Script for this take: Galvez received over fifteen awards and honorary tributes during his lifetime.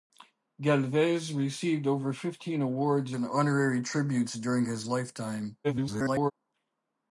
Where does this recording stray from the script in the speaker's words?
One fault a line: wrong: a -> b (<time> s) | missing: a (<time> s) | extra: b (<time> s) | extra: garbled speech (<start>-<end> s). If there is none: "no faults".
extra: garbled speech (5.6-6.3 s)